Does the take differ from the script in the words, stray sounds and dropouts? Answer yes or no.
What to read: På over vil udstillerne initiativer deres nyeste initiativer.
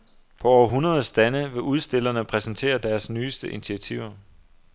yes